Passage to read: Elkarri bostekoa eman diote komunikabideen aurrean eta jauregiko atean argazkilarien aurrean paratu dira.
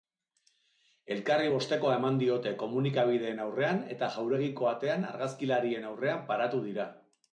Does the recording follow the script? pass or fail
pass